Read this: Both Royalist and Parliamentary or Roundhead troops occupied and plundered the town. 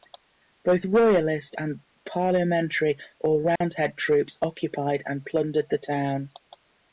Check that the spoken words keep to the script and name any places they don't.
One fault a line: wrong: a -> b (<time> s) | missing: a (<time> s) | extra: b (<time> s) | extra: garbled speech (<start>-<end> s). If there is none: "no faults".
no faults